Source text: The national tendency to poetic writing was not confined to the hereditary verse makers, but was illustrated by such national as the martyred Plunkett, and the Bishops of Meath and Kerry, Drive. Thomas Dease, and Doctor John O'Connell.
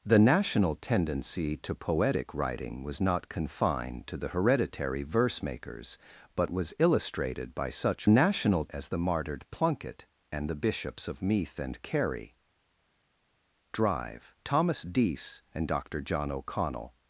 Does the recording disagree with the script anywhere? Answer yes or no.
no